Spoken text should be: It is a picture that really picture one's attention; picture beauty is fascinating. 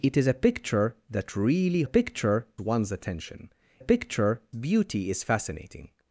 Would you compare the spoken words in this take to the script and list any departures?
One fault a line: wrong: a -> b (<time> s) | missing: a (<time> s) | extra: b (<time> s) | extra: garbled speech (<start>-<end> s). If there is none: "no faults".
no faults